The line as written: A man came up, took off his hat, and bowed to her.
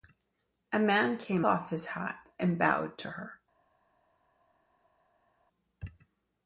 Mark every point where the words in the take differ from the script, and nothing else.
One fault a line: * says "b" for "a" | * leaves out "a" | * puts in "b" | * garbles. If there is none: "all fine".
* leaves out "up took"